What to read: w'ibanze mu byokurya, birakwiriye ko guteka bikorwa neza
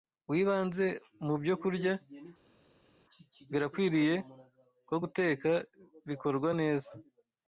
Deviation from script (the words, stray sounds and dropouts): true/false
false